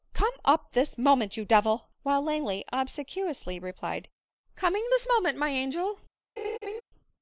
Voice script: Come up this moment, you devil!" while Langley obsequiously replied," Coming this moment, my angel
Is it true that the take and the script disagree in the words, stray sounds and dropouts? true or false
true